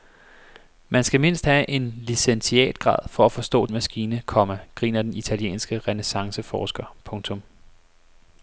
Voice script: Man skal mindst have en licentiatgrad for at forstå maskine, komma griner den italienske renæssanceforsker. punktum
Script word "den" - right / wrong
right